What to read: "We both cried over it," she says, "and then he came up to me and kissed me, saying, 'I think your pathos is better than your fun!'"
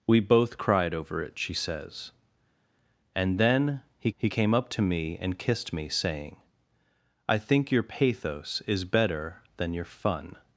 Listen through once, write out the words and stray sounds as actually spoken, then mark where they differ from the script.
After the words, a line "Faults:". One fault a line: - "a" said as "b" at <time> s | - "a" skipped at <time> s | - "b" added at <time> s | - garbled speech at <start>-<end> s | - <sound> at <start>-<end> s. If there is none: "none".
"We both cried over it," she says, "and then he he came up to me and kissed me, saying, 'I think your pathos is better than your fun!'"
Faults:
- "he" added at 4.2 s